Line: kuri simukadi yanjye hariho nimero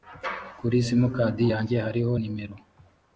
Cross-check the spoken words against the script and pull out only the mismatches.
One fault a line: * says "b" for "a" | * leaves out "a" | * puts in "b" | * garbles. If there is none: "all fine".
all fine